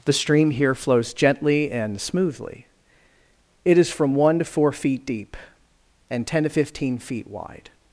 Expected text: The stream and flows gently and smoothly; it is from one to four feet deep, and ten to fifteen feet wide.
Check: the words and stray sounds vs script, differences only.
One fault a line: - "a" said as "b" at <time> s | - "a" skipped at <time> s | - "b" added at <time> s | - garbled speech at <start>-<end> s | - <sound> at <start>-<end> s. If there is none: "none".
- "and" said as "here" at 0.5 s